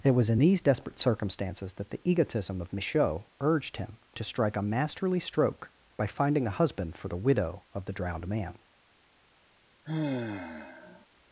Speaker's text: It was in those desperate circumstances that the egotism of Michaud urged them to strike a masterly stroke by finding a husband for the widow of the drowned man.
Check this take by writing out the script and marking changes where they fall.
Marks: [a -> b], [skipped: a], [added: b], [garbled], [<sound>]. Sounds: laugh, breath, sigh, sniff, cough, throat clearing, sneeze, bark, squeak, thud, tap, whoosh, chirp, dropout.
It was in [those -> these] desperate circumstances that the egotism of Michaud urged [them -> him] to strike a masterly stroke by finding a husband for the widow of the drowned man. [sigh]